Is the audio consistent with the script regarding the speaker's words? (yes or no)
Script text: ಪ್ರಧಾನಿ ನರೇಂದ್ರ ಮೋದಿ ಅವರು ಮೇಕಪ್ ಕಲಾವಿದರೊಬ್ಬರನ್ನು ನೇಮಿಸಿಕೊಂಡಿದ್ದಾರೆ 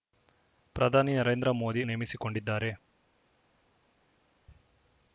no